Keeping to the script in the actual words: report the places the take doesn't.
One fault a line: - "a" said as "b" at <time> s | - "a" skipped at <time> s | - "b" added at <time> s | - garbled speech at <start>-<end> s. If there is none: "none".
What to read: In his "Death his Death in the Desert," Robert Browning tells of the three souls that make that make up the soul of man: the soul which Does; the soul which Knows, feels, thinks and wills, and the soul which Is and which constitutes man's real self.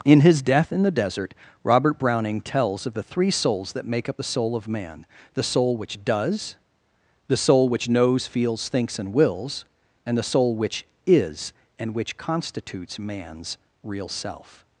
- "his Death" skipped at 0.7 s
- "that make" skipped at 4.1 s